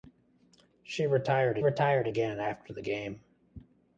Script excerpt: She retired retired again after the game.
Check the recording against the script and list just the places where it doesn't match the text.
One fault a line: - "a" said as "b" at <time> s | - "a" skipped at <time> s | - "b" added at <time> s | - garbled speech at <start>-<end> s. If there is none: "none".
none